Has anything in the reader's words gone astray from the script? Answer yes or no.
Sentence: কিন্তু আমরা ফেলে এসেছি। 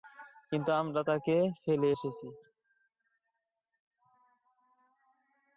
yes